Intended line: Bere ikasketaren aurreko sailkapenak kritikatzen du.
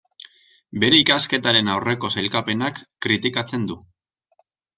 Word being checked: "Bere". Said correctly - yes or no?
yes